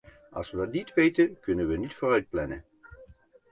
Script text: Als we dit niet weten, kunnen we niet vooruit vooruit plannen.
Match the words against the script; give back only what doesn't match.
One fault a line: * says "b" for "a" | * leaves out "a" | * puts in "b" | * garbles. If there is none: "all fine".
* says "dat" for "dit"
* leaves out "vooruit"